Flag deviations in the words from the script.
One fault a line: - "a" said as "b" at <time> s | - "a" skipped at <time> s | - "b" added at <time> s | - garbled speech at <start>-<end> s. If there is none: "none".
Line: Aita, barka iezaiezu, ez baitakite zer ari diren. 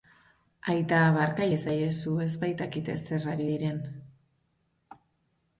none